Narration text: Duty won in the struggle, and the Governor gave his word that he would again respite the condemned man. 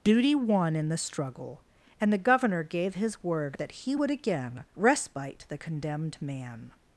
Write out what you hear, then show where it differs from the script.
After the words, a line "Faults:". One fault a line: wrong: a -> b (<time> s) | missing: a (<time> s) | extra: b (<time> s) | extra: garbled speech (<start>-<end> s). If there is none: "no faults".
Duty won in the struggle, and the Governor gave his word that he would again respite the condemned man.
Faults:
no faults